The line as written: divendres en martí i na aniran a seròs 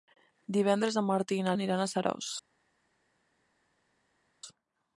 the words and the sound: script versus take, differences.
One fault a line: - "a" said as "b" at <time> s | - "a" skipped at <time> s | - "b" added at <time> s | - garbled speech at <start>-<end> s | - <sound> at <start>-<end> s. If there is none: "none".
none